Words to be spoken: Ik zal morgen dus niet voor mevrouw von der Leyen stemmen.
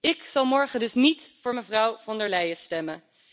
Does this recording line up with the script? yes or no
yes